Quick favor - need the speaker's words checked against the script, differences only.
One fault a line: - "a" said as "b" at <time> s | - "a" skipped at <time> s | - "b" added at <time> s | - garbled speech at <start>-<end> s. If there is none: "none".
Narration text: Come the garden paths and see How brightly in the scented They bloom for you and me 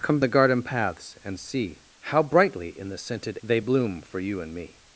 none